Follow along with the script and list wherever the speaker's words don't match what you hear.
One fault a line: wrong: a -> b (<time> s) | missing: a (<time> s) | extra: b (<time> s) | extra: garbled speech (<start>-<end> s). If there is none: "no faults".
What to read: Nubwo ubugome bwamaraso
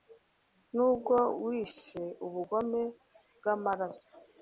extra: wishe (1.4 s)